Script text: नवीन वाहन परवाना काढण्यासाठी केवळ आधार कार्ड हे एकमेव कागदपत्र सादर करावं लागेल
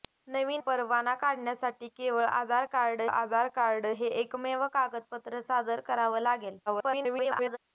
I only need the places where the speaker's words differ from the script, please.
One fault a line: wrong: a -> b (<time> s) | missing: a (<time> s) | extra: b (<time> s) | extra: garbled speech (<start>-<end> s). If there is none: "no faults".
missing: वाहन (0.6 s)
extra: आधार कार्ड (3.0 s)
extra: garbled speech (6.7-7.6 s)